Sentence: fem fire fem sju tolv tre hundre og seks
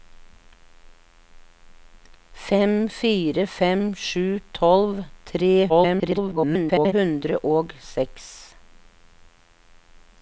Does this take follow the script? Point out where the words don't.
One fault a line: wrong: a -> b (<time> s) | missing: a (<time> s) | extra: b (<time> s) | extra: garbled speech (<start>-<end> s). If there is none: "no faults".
extra: garbled speech (5.7-6.9 s)